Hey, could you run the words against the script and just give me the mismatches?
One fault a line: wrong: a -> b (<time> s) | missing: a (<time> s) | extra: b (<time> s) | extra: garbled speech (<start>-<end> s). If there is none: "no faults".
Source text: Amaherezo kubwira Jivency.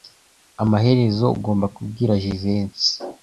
extra: ugomba (1.4 s)